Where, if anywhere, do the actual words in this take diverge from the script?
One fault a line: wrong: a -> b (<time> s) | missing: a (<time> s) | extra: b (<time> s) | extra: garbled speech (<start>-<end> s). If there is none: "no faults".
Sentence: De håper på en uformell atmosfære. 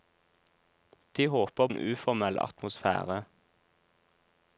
missing: på (1.7 s)